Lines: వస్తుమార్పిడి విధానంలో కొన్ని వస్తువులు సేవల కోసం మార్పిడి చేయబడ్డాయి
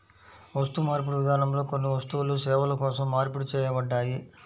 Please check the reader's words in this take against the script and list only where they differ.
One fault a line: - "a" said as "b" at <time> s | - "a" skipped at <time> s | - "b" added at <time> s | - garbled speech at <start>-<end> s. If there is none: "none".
none